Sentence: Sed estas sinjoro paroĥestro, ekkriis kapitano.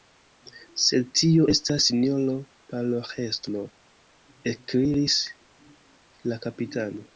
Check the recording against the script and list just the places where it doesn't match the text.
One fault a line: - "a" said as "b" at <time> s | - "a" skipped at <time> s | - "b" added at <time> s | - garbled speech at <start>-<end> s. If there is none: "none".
- "tio" added at 1.2 s
- "la" added at 6.3 s